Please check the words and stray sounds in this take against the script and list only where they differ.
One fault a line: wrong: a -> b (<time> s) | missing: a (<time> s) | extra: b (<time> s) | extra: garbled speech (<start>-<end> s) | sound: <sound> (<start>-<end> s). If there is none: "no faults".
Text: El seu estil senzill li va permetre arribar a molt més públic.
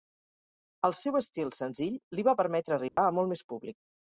sound: dropout (2.9-3.0 s)